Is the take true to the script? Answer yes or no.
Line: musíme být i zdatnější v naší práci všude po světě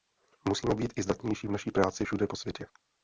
yes